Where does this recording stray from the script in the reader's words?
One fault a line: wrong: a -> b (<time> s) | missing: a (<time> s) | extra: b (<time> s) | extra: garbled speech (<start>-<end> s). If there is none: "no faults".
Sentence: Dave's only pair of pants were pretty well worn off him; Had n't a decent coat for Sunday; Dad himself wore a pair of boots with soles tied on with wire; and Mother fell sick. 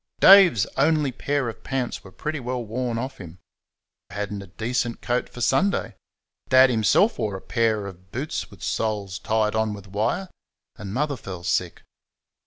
no faults